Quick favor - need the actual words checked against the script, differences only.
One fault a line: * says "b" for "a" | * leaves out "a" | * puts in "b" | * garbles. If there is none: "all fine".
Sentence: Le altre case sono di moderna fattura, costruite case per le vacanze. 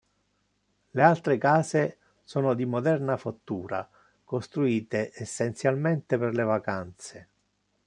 * says "essenzialmente" for "case"